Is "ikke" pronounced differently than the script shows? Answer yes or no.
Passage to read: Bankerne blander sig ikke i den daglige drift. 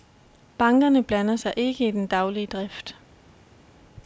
no